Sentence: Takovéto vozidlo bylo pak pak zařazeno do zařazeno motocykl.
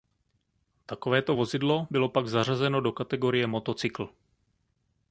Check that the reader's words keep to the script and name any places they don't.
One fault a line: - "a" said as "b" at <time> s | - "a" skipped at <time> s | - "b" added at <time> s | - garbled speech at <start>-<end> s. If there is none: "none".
- "pak" skipped at 2.3 s
- "zařazeno" said as "kategorie" at 2.9 s